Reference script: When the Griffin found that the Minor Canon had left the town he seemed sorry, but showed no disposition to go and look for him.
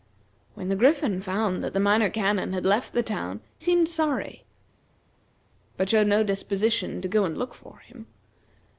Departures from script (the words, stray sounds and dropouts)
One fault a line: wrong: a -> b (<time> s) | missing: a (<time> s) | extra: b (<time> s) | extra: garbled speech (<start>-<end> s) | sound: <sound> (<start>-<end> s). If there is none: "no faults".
missing: he (3.4 s)